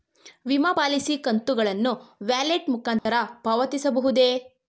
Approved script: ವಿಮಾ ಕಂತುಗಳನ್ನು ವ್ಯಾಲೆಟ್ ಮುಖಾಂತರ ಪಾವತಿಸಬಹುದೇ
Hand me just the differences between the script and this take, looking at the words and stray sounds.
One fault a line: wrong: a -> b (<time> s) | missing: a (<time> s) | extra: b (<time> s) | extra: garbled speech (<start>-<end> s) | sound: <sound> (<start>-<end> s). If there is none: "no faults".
extra: ಪಾಲಿಸಿ (0.7 s)
sound: dropout (3.0-3.1 s)